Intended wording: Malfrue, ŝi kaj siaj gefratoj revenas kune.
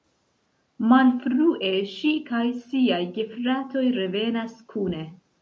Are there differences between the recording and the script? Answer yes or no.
no